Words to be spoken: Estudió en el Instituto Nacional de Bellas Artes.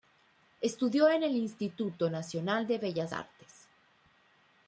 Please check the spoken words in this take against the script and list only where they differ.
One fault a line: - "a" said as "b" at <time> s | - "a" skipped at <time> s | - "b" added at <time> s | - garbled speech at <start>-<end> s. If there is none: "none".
none